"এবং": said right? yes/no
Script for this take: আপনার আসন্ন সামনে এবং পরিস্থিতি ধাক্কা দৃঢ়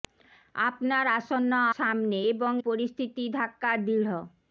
yes